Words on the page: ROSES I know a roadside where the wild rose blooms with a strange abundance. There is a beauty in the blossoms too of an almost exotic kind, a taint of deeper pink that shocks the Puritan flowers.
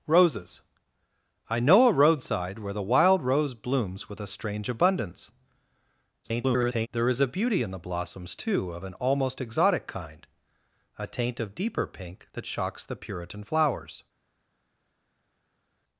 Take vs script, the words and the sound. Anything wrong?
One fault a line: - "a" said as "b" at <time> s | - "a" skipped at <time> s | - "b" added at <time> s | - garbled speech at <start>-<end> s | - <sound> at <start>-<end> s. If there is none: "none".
- garbled speech at 6.2-6.9 s